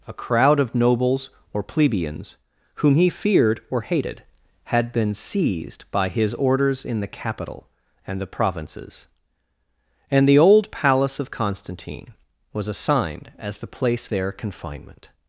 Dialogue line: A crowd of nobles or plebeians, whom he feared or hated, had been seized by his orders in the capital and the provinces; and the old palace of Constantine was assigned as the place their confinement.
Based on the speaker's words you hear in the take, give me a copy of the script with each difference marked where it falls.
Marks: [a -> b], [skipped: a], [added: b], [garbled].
A crowd of nobles or plebeians, whom he feared or hated, had been seized by his orders in the capital and the provinces; and the old palace of Constantine was assigned as the place their confinement.